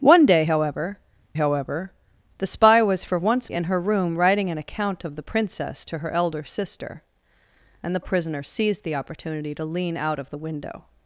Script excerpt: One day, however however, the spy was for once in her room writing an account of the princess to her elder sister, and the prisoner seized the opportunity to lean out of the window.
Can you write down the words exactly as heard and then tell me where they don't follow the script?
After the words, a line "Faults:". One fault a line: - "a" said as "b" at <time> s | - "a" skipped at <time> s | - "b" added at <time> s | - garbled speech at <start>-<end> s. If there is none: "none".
One day, however however, the spy was for once in her room writing an account of the princess to her elder sister, and the prisoner seized the opportunity to lean out of the window.
Faults:
none